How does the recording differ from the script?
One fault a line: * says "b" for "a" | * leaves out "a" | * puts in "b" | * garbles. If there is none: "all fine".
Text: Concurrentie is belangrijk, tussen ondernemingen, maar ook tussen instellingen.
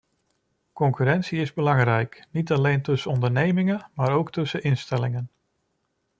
* puts in "niet alleen"